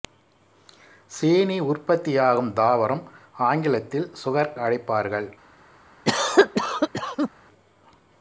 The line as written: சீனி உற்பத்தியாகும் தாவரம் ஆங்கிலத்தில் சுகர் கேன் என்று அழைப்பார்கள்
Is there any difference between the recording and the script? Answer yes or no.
yes